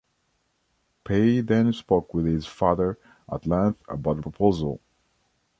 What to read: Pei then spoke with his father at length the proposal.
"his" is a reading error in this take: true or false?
false